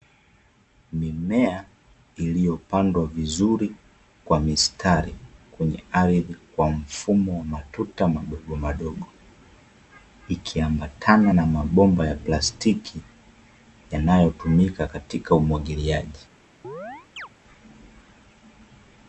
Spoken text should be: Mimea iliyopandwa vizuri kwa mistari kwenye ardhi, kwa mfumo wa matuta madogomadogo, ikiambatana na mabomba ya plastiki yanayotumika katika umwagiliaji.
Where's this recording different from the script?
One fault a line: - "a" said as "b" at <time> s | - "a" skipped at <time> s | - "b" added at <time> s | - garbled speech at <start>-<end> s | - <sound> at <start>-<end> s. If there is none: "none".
- chirp at 16.6-17.3 s